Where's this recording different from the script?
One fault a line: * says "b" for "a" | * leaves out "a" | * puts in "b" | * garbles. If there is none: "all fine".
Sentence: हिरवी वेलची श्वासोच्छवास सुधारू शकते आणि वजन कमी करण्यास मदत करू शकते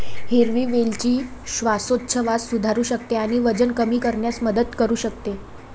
all fine